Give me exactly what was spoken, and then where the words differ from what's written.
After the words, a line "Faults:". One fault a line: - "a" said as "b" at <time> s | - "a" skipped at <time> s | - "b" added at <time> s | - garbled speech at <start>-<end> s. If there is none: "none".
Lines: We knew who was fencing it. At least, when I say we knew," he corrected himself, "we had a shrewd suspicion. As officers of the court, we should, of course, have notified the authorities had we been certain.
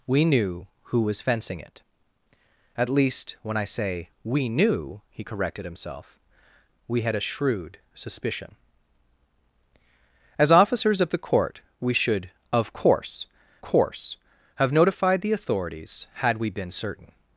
We knew who was fencing it. At least, when I say we knew," he corrected himself, "we had a shrewd suspicion. As officers of the court, we should, of course course, have notified the authorities had we been certain.
Faults:
- "course" added at 13.6 s